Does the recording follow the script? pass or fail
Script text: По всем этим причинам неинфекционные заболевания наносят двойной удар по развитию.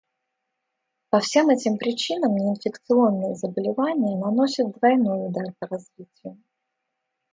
pass